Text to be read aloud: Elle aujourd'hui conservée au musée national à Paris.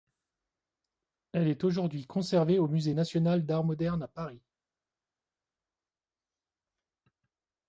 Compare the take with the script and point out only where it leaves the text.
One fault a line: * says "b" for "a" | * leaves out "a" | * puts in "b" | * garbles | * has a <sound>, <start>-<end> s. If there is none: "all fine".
* puts in "est"
* puts in "d'Art moderne"